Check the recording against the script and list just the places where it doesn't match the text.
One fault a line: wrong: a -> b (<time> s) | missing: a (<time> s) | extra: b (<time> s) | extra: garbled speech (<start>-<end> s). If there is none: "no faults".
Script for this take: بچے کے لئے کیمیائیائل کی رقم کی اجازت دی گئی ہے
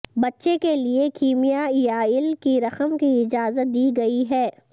no faults